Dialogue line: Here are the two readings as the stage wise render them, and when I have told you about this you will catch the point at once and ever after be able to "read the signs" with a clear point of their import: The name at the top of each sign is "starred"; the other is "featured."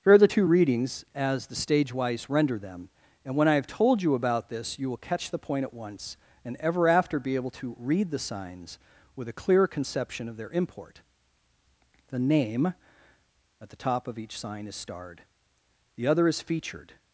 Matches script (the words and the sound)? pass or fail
fail